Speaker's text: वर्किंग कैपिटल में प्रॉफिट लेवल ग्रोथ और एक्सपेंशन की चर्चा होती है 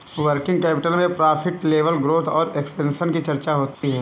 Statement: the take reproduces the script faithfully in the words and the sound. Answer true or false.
false